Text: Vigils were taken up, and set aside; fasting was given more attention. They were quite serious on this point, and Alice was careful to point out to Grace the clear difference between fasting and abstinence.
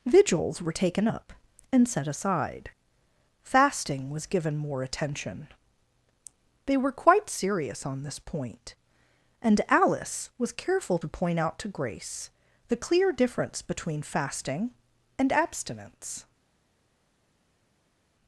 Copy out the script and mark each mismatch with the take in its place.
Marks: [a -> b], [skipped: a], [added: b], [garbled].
Vigils were taken up, and set aside; fasting was given more attention. They were quite serious on this point, and Alice was careful to point out to Grace the clear difference between fasting and abstinence.